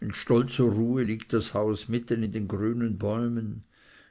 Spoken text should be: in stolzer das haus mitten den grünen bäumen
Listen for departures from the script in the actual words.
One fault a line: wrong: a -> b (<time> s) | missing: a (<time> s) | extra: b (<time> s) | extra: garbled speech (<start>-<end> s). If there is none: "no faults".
extra: ruhe liegt (0.6 s)
extra: in (2.2 s)